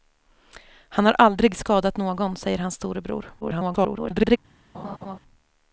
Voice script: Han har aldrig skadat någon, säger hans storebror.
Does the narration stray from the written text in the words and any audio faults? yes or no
yes